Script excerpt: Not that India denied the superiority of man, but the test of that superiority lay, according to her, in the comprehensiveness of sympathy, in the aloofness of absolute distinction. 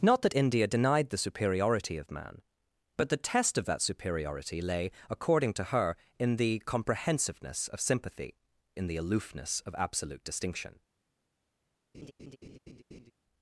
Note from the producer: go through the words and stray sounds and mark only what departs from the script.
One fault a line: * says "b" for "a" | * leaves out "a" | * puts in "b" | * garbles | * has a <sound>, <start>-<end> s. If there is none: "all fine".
* has a laugh, 11.9-13.1 s